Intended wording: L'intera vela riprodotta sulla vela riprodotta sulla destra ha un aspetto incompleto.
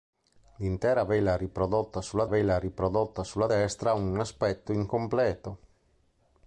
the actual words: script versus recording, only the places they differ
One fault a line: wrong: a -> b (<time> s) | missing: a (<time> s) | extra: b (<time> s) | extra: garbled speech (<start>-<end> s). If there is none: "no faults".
no faults